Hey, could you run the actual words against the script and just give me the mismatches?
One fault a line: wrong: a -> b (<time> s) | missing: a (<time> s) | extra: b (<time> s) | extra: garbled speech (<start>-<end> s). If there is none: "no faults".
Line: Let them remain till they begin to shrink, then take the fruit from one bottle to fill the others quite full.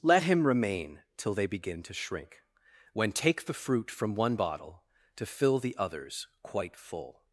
wrong: them -> him (0.2 s)
wrong: then -> when (2.9 s)